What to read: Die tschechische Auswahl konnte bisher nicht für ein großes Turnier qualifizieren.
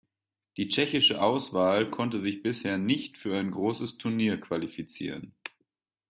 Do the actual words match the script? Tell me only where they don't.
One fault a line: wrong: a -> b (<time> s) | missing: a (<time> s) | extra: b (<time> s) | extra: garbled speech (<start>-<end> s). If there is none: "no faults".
extra: sich (2.2 s)